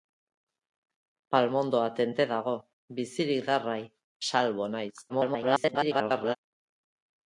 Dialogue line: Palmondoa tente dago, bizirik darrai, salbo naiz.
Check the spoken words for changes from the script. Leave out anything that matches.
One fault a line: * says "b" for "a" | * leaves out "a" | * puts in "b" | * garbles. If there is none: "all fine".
* garbles